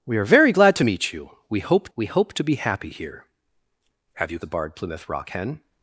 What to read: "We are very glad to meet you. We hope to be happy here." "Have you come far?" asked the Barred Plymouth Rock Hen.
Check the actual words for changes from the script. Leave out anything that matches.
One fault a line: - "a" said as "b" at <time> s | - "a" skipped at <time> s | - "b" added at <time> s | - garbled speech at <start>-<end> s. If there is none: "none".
- "we hope" added at 2.0 s
- "come far asked" skipped at 4.4 s